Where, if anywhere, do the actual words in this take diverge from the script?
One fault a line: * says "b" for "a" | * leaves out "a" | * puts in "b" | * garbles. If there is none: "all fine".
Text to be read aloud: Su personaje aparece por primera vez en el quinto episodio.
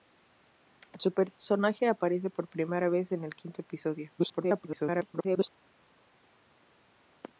* garbles